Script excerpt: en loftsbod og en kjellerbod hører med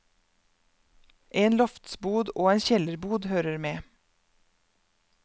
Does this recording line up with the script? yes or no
yes